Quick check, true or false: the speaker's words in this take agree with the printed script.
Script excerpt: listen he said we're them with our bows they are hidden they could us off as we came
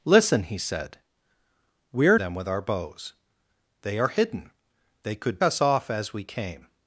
true